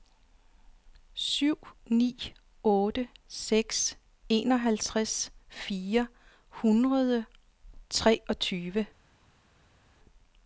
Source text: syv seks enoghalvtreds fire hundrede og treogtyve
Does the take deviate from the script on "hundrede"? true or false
false